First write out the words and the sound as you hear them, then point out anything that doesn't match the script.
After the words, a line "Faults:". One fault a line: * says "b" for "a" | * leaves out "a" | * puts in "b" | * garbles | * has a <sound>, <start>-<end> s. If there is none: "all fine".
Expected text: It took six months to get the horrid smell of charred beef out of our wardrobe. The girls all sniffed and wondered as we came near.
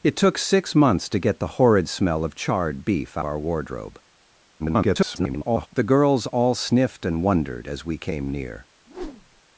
It took six months to get the horrid smell of charred beef our wardrobe. [garbled] The girls all sniffed and wondered as we came near.
Faults:
* leaves out "out of"
* garbles
* has a whoosh, 8.9-9.4 s